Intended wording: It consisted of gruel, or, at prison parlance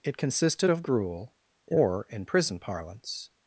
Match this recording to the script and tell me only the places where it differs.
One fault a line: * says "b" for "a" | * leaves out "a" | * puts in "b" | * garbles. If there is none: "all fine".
* says "in" for "at"